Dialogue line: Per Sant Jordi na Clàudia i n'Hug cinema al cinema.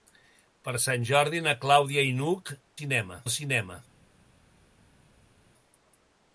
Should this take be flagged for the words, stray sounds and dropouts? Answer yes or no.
no